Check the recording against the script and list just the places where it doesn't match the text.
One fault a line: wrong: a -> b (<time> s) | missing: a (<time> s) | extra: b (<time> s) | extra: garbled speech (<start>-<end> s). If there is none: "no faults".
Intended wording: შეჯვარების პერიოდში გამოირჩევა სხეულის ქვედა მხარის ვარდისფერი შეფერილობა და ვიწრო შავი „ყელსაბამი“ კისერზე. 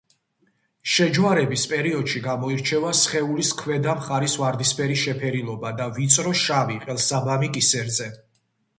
no faults